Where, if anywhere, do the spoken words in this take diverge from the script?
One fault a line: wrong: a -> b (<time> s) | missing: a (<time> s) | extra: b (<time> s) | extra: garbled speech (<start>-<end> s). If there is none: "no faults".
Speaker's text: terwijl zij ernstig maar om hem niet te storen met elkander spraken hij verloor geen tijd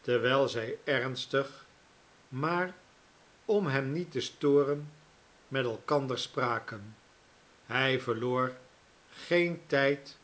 no faults